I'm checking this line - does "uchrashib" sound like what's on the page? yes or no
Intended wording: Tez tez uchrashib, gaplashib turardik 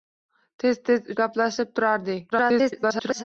no